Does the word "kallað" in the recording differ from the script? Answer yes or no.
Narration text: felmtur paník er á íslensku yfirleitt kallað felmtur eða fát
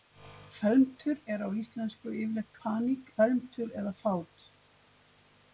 yes